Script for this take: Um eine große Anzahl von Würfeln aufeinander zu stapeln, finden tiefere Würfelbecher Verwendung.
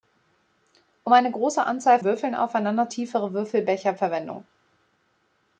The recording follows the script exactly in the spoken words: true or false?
false